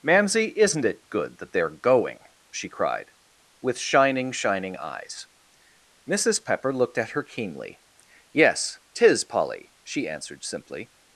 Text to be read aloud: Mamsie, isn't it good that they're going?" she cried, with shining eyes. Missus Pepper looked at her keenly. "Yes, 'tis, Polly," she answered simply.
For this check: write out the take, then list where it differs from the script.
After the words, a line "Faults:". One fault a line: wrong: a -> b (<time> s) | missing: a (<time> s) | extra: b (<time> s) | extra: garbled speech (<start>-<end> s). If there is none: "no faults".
Mamsie, isn't it good that they're going?" she cried, with shining shining eyes. Missus Pepper looked at her keenly. "Yes, 'tis, Polly," she answered simply.
Faults:
extra: shining (4.3 s)